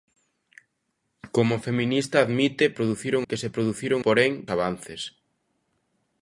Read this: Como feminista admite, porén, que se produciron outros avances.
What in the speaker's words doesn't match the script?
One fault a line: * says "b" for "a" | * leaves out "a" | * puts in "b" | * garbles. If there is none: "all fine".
* says "produciron" for "porén"
* says "porén" for "outros"